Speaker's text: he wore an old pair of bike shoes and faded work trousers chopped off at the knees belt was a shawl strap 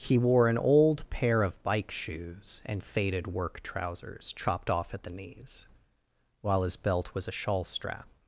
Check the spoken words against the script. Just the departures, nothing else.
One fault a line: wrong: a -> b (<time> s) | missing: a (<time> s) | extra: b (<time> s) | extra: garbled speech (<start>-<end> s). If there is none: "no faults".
extra: while his (6.4 s)